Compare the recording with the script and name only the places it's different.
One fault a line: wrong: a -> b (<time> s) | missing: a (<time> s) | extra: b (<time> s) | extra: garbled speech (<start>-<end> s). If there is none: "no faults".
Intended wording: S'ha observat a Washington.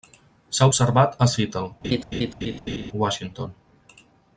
extra: Seattle (1.3 s)